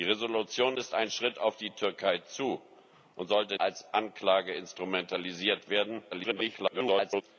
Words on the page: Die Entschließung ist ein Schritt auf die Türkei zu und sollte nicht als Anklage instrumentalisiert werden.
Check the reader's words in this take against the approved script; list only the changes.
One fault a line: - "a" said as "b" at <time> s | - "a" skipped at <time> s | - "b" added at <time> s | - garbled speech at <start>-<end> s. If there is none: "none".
- "nicht" skipped at 3.6 s
- garbled speech at 6.1-7.2 s